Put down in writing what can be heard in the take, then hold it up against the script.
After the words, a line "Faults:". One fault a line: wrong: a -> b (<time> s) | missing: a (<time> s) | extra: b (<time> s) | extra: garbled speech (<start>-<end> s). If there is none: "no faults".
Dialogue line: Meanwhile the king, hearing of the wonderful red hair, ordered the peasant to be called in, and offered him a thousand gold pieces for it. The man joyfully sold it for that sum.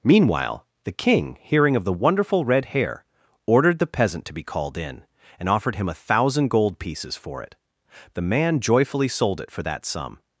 Meanwhile the king, hearing of the wonderful red hair, ordered the peasant to be called in, and offered him a thousand gold pieces for it. The man joyfully sold it for that sum.
Faults:
no faults